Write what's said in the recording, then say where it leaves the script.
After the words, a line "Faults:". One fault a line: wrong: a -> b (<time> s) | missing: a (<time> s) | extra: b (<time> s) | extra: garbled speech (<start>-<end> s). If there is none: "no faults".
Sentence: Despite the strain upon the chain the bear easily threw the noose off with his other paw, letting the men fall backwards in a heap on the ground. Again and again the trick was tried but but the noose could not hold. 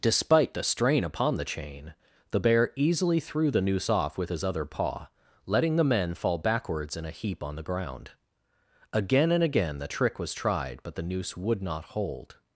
Despite the strain upon the chain the bear easily threw the noose off with his other paw, letting the men fall backwards in a heap on the ground. Again and again the trick was tried but the noose would not hold.
Faults:
missing: but (10.9 s)
wrong: could -> would (11.4 s)